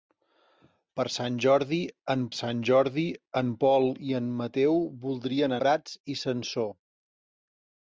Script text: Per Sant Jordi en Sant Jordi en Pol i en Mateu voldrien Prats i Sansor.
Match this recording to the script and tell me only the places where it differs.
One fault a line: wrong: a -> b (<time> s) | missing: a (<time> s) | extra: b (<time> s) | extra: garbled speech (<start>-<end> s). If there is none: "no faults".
no faults